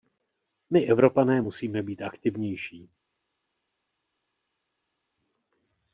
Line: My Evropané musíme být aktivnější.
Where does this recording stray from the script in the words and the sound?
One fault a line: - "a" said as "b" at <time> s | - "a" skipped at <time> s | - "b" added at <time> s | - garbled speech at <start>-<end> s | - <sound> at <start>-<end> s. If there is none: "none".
none